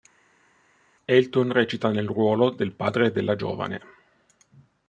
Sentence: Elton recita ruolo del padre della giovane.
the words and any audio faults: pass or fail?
fail